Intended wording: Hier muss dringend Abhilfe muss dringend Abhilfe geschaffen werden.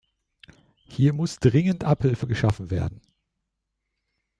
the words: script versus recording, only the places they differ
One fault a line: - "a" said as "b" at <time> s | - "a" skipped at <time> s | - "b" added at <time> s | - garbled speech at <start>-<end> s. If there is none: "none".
- "muss dringend Abhilfe" skipped at 2.3 s